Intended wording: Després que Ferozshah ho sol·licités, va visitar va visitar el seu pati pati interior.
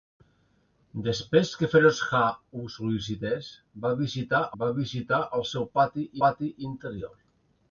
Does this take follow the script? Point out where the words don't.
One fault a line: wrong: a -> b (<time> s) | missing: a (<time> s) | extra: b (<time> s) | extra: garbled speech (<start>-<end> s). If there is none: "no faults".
no faults